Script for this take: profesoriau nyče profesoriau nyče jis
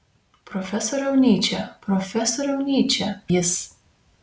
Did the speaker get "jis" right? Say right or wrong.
right